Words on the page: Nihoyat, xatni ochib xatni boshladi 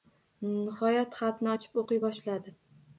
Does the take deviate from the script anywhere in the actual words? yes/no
yes